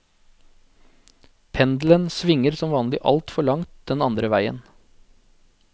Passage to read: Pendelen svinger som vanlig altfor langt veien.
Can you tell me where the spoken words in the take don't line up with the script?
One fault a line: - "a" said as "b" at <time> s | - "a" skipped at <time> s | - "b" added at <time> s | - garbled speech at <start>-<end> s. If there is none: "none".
- "den andre" added at 3.9 s